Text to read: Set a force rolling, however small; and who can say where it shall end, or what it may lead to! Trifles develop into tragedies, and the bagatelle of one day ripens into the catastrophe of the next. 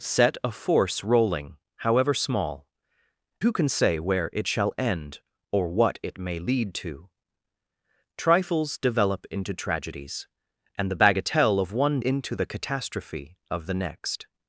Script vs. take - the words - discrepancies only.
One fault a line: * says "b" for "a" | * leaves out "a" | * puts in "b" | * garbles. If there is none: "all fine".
* leaves out "and"
* leaves out "day ripens"